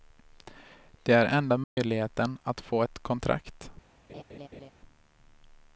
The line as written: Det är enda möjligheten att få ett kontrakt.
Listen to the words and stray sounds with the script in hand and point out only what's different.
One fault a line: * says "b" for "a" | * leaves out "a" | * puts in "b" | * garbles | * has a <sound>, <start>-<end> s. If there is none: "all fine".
* has a dropout, 1.6-1.8 s
* has a laugh, 4.1-4.7 s